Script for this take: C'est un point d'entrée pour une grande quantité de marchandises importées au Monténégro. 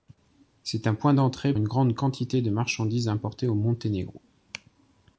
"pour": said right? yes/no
no